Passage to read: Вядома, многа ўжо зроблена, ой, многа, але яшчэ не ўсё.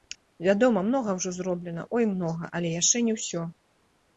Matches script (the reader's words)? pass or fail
pass